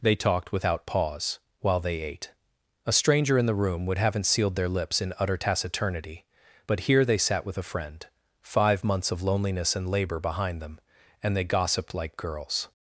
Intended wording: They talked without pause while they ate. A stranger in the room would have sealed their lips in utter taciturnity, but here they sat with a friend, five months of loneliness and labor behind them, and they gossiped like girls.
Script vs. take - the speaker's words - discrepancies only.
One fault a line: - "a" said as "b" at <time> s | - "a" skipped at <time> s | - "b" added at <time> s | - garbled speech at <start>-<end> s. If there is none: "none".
- "have" said as "haven't" at 4.0 s